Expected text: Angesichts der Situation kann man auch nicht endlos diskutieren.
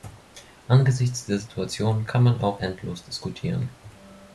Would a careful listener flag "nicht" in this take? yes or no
yes